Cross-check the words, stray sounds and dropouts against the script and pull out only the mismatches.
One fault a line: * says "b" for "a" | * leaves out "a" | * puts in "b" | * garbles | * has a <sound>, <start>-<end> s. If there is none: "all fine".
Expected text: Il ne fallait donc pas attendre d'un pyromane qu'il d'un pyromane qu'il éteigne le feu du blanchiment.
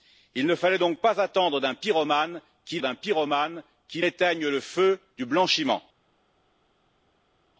all fine